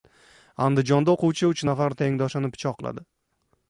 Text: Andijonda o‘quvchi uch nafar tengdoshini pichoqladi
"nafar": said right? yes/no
yes